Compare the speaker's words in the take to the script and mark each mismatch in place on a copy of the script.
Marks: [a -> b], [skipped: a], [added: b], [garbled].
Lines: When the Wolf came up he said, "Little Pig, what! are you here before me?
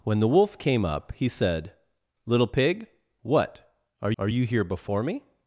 When the Wolf came up he said, "Little Pig, what! are [added: are] you here before me?